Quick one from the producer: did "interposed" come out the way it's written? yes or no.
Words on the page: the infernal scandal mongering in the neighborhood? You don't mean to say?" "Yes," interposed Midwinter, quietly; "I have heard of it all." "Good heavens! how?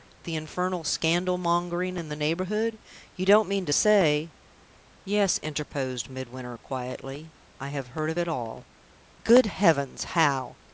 yes